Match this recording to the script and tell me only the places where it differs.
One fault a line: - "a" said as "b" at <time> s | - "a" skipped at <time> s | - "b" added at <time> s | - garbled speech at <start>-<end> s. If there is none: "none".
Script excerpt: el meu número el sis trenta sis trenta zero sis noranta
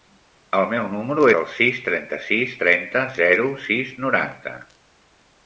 none